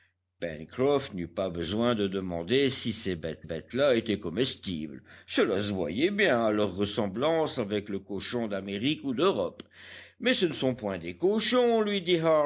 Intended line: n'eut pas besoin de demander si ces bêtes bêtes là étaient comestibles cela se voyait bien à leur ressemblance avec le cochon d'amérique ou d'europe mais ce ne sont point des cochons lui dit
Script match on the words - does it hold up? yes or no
yes